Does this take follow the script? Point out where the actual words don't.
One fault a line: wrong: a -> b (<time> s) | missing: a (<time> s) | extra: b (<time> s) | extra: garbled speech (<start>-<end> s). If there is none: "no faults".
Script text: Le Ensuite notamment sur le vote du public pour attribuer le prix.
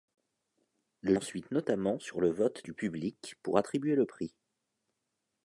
no faults